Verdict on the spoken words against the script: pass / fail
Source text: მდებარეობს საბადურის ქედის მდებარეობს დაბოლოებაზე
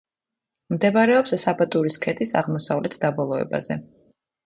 fail